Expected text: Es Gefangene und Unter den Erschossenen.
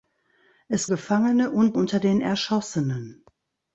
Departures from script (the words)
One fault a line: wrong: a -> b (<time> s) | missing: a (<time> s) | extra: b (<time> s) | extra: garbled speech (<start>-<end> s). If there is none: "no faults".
no faults